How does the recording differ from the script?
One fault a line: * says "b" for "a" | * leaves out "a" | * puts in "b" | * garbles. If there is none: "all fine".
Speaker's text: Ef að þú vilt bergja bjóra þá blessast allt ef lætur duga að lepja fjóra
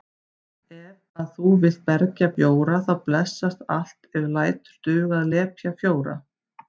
all fine